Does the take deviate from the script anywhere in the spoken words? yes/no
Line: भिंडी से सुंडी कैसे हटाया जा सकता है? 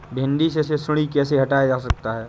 yes